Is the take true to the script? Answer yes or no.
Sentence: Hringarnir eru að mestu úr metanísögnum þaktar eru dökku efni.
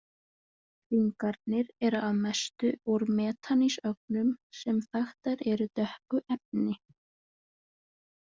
no